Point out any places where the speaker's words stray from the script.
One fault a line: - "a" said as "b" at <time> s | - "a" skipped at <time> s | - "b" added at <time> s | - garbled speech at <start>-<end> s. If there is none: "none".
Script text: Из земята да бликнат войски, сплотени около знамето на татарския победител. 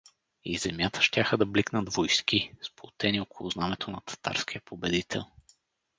- "щяха" added at 1.0 s